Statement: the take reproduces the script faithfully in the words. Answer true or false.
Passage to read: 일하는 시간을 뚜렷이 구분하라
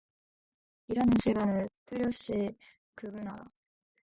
true